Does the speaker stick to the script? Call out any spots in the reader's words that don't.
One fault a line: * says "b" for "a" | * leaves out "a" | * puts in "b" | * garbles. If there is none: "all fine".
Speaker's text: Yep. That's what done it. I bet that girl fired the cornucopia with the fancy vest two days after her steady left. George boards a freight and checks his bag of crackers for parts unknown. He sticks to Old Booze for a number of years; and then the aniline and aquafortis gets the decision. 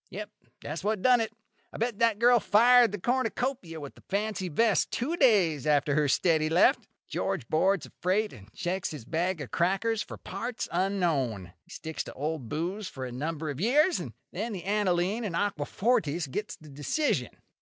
all fine